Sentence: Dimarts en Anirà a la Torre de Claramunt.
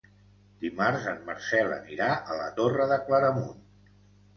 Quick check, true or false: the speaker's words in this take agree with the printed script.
false